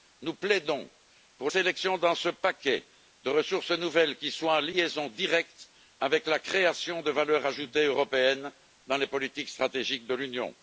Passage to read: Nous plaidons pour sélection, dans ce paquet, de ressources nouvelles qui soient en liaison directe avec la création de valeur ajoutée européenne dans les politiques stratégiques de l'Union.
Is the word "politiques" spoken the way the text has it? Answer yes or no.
yes